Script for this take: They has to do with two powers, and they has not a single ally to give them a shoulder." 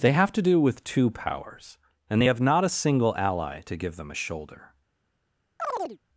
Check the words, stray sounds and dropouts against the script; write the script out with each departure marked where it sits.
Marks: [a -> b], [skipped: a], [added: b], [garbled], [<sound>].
They [has -> have] to do with two powers, and they [has -> have] not a single ally to give them a shoulder." [chirp]